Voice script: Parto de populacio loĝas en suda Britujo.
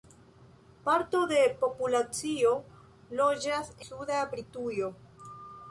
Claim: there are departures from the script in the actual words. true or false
true